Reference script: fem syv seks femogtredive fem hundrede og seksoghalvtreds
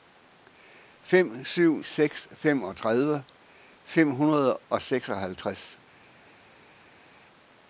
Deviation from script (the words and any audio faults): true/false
false